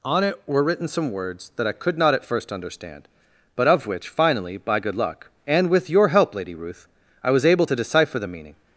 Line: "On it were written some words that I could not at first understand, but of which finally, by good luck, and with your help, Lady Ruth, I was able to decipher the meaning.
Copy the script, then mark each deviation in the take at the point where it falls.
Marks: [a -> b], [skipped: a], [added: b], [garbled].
"On it were written some words that I could not at first understand, but of which finally, by good luck, and with your help, Lady Ruth, I was able to decipher the meaning.